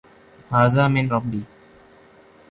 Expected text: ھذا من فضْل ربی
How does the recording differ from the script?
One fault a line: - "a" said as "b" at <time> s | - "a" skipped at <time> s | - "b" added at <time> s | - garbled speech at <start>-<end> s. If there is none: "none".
- "فضْل" skipped at 1.1 s